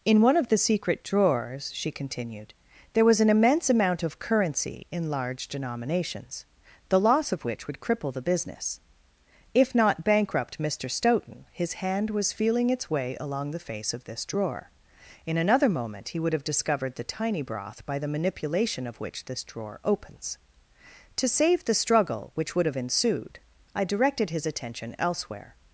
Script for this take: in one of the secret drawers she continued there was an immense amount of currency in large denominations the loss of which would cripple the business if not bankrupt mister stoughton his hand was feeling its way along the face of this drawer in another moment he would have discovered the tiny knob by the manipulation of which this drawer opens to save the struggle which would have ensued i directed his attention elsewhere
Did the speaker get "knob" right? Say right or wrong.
wrong